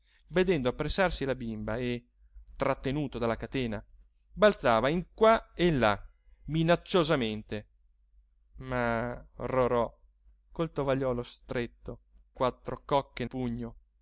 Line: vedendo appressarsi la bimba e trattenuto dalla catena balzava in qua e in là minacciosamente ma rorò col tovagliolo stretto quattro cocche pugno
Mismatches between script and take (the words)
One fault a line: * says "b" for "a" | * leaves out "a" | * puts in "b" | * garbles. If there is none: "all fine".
all fine